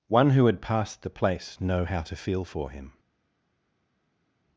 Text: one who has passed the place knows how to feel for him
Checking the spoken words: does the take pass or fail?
fail